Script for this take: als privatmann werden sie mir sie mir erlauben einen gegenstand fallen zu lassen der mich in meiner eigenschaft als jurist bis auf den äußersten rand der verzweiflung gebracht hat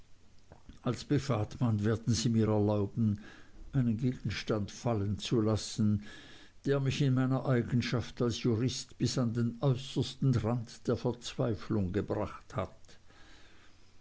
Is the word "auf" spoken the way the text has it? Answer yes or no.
no